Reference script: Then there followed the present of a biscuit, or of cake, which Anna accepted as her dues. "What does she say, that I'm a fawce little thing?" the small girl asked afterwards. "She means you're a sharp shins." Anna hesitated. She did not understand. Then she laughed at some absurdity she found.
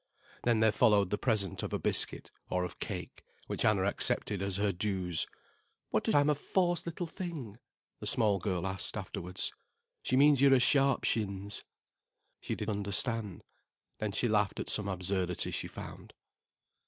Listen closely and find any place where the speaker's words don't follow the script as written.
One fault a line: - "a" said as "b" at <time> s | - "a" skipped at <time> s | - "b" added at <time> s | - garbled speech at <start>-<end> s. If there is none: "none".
- "she say that" skipped at 6.2 s
- "Anna hesitated" skipped at 11.6 s
- "not" skipped at 12.7 s